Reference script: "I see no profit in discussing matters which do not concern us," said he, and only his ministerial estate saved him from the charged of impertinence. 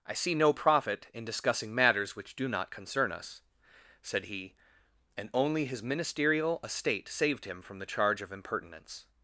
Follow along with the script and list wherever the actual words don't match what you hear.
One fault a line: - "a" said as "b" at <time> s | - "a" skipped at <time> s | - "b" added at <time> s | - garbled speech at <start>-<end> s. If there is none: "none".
- "charged" said as "charge" at 7.9 s